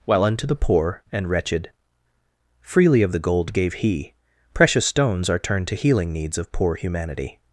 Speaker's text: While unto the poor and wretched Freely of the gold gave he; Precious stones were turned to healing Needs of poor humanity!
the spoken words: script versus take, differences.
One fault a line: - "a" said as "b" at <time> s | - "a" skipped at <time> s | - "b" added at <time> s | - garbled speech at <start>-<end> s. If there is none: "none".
- "were" said as "are" at 5.3 s